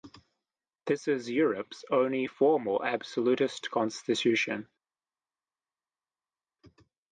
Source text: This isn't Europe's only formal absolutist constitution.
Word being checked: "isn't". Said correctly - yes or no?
no